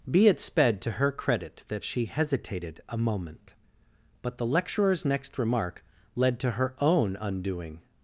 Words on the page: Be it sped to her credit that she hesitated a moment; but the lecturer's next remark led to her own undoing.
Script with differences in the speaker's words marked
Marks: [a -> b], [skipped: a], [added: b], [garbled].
Be it sped to her credit that she hesitated a moment; but the lecturer's next remark led to her own undoing.